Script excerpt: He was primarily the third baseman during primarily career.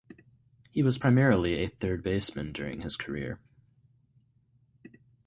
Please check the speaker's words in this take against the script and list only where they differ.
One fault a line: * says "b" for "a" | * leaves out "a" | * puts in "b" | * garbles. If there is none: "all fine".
* says "a" for "the"
* says "his" for "primarily"